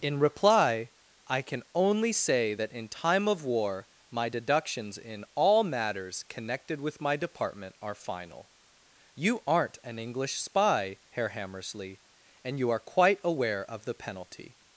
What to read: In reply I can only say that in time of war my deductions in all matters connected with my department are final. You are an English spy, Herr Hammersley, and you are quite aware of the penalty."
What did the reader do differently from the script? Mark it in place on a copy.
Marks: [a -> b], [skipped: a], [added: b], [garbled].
In reply I can only say that in time of war my deductions in all matters connected with my department are final. You [are -> aren't] an English spy, Herr Hammersley, and you are quite aware of the penalty."